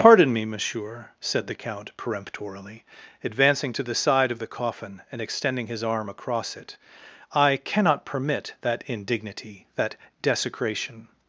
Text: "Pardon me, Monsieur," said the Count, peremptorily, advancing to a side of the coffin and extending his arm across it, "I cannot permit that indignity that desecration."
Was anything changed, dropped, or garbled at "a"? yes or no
yes